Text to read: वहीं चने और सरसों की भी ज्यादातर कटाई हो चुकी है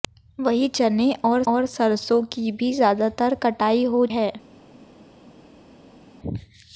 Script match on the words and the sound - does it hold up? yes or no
no